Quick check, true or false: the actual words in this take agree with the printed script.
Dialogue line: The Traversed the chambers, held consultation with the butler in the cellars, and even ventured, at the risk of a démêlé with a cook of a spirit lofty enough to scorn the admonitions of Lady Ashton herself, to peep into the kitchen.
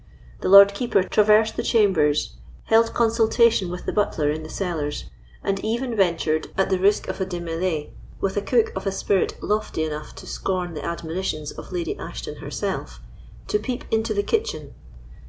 false